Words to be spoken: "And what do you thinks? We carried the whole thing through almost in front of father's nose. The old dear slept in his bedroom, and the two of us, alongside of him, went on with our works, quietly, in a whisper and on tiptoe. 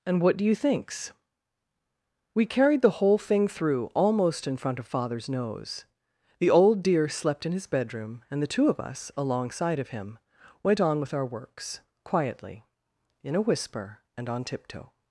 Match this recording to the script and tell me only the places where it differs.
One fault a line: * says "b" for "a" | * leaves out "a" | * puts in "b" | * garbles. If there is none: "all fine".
all fine